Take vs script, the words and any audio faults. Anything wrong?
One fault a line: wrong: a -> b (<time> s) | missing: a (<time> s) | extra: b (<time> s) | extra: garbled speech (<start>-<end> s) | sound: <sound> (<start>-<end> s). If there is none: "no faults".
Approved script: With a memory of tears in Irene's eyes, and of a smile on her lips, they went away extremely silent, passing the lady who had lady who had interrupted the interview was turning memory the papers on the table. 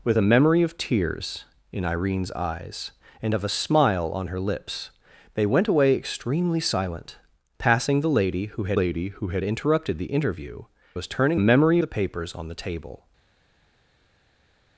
no faults